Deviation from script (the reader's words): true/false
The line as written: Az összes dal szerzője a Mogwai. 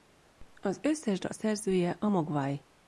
false